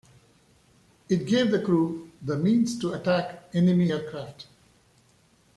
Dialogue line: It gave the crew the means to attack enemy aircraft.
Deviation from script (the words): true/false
false